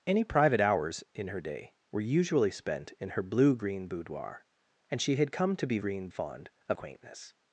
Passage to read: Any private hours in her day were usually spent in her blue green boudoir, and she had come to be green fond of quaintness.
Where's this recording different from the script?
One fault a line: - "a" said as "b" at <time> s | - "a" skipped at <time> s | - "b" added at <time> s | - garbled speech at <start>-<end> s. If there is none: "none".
none